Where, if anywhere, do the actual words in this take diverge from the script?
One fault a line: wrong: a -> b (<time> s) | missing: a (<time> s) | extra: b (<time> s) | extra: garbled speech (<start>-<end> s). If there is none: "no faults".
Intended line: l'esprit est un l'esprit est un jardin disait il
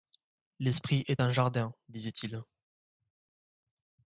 missing: l'esprit est un (1.3 s)